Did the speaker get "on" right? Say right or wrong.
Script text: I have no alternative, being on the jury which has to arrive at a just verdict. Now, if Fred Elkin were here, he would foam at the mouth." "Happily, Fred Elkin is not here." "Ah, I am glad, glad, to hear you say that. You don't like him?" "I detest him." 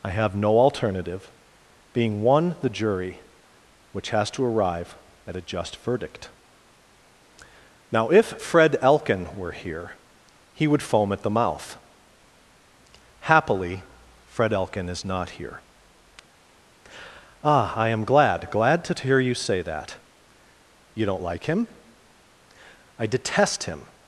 wrong